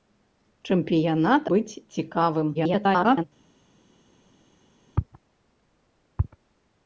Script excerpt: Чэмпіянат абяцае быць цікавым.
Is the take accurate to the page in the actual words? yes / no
no